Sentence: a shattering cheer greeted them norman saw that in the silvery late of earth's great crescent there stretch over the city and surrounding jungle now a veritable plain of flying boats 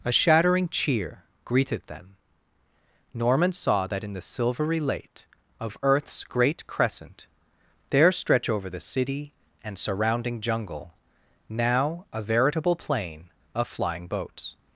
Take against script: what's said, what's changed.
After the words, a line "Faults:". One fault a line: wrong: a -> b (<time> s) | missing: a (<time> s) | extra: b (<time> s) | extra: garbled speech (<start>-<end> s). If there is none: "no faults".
a shattering cheer greeted them norman saw that in the silvery late of earth's great crescent there stretch over the city and surrounding jungle now a veritable plain of flying boats
Faults:
no faults